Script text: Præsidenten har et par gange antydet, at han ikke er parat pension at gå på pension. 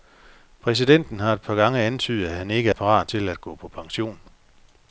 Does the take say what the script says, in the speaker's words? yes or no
no